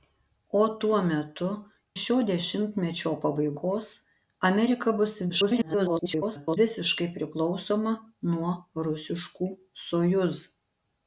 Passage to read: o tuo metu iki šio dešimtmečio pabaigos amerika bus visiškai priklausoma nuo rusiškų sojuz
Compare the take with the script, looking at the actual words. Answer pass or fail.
fail